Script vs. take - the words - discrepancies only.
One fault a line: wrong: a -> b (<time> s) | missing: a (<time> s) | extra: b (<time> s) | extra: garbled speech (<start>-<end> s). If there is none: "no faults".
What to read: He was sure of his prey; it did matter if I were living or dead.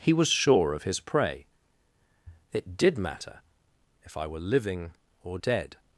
no faults